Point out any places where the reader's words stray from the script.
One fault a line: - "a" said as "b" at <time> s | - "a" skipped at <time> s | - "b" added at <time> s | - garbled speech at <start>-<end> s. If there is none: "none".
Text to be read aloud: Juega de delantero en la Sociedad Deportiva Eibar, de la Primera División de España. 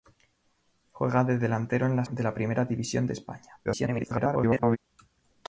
- "Sociedad Deportiva Eibar" skipped at 2.0 s
- garbled speech at 3.6-4.8 s